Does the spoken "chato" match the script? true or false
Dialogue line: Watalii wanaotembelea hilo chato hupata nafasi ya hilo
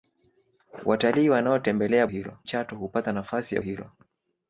true